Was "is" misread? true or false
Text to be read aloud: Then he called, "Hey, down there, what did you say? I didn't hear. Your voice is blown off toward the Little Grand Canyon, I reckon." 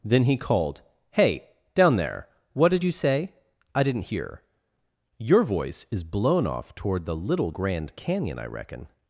false